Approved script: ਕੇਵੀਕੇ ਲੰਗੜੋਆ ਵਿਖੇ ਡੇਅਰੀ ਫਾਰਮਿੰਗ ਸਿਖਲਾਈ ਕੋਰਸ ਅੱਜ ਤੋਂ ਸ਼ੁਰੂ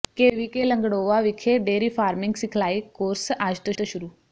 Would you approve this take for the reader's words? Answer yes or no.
no